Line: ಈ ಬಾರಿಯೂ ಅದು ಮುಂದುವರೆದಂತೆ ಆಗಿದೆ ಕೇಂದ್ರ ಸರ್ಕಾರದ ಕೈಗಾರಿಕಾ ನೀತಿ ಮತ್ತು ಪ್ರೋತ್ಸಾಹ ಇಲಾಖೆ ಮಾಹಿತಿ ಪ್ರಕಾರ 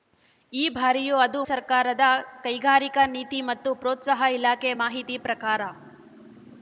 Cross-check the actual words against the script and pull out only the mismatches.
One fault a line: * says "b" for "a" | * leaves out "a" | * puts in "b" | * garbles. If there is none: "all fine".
* leaves out "ಮುಂದುವರೆದಂತೆ ಆಗಿದೆ ಕೇಂದ್ರ"